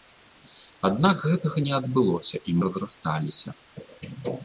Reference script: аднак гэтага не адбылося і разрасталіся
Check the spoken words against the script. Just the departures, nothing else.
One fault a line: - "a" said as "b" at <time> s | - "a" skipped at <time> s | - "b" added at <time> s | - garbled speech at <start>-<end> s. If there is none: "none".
none